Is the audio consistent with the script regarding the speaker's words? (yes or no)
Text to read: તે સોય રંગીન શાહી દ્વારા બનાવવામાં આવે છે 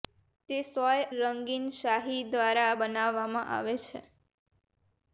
yes